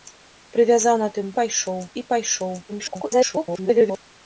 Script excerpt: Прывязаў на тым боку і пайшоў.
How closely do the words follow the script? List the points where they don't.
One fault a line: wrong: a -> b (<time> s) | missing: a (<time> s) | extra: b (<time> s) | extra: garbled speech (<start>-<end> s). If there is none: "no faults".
wrong: боку -> пайшоў (1.4 s)
extra: garbled speech (2.7-4.0 s)